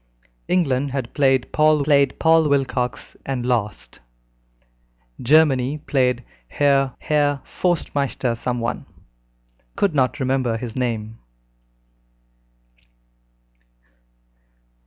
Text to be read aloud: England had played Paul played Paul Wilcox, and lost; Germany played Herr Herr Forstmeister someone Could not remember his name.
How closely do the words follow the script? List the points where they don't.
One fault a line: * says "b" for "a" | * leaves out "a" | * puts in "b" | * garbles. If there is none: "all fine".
all fine